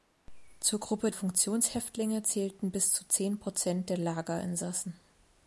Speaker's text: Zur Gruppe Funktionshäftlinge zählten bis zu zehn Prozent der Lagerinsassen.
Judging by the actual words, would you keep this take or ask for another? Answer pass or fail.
pass